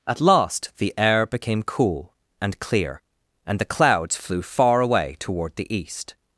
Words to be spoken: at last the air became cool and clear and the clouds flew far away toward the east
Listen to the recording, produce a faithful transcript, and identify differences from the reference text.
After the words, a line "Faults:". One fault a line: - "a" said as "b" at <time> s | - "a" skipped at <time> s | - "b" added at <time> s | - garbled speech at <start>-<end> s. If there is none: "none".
at last the air became cool and clear and the clouds flew far away toward the east
Faults:
none